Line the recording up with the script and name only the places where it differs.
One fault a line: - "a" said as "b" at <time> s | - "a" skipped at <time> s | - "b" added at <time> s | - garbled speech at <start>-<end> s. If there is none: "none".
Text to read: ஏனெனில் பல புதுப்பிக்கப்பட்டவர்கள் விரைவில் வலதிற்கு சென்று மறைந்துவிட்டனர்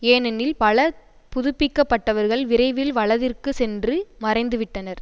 none